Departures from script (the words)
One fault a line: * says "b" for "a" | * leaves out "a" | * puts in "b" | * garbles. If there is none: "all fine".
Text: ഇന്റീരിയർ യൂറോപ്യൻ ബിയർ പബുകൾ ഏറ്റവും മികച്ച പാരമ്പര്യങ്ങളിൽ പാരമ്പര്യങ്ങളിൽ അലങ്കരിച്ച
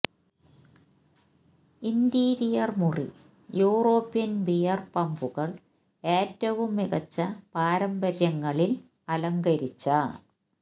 * puts in "മുറി"
* leaves out "പാരമ്പര്യങ്ങളിൽ"